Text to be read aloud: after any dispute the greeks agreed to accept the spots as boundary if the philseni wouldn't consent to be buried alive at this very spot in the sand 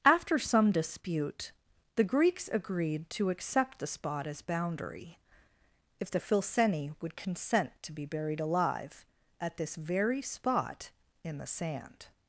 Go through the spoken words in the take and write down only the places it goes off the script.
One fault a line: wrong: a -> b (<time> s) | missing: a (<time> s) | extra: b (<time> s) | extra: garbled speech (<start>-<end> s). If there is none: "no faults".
wrong: any -> some (0.4 s)
wrong: spots -> spot (3.9 s)
wrong: wouldn't -> would (7.0 s)